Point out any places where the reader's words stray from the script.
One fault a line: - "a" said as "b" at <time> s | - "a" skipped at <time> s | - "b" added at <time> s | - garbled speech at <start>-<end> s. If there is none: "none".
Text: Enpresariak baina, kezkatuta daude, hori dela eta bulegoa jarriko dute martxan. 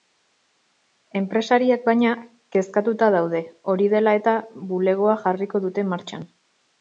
none